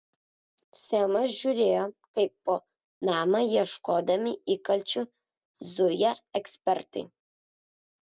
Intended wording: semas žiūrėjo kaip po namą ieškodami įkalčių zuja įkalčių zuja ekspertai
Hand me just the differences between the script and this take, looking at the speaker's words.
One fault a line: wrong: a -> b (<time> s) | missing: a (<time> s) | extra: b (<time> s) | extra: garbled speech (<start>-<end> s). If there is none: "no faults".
missing: įkalčių zuja (6.1 s)